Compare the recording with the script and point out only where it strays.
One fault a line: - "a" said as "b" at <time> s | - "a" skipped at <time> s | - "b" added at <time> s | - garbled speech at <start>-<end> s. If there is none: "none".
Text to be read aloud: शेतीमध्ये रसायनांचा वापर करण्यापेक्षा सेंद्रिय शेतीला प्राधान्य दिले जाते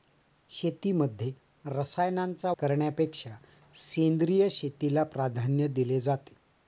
- "वापर" skipped at 2.5 s